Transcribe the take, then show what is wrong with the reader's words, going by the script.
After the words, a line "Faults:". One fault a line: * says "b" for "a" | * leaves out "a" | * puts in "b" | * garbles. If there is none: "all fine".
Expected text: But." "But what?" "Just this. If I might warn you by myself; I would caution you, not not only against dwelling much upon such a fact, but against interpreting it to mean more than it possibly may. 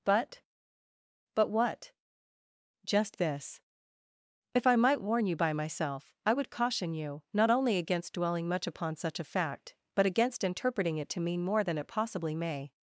But." "But what?" "Just this. If I might warn you by myself; I would caution you, not only against dwelling much upon such a fact, but against interpreting it to mean more than it possibly may.
Faults:
* leaves out "not"